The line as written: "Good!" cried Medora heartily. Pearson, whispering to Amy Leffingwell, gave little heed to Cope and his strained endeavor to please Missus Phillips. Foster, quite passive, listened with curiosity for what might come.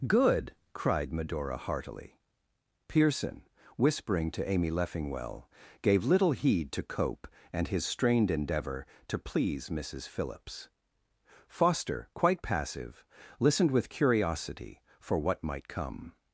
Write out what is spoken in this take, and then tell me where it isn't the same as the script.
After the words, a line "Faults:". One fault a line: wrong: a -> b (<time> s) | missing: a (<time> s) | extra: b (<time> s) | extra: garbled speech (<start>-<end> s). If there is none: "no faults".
"Good!" cried Medora heartily. Pearson, whispering to Amy Leffingwell, gave little heed to Cope and his strained endeavor to please Missus Phillips. Foster, quite passive, listened with curiosity for what might come.
Faults:
no faults